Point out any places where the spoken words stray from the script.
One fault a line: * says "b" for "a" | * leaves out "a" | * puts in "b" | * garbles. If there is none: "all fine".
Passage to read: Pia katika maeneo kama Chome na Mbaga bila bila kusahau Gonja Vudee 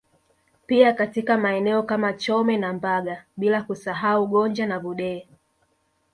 * leaves out "bila"
* puts in "na"